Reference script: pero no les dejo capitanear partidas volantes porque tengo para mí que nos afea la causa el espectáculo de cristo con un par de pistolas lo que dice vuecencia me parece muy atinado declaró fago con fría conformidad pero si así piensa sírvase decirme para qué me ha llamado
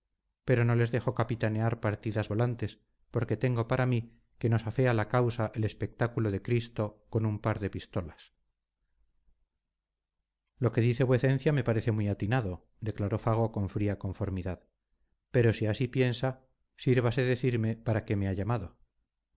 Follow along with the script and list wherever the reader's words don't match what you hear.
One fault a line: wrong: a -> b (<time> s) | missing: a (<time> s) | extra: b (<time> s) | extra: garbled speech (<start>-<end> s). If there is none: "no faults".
no faults